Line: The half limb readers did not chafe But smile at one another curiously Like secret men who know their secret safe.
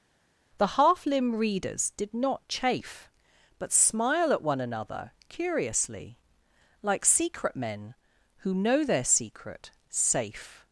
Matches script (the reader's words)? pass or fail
pass